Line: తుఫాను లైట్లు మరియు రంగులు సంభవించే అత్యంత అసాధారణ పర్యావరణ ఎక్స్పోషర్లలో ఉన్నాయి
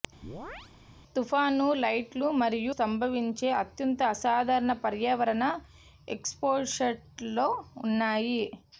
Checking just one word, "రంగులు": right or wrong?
wrong